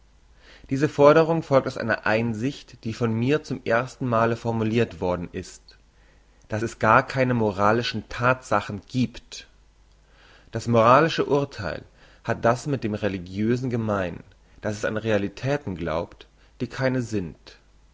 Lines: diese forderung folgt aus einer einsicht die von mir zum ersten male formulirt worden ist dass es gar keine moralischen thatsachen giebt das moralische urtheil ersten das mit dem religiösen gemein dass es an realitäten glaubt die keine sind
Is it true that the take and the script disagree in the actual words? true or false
true